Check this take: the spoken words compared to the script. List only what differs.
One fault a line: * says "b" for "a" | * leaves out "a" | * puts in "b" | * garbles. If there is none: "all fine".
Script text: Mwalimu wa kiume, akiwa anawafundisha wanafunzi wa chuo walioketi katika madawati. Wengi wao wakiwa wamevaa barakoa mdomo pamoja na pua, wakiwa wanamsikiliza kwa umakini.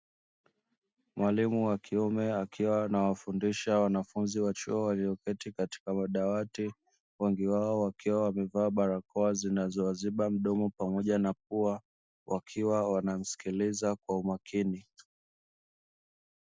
* puts in "zinazowaziba"